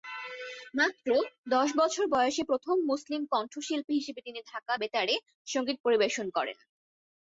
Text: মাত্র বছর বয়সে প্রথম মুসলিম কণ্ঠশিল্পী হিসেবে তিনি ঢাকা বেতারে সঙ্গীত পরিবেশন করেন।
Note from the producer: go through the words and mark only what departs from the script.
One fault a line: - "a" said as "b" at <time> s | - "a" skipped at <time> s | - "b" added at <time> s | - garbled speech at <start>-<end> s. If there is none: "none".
- "দশ" added at 1.5 s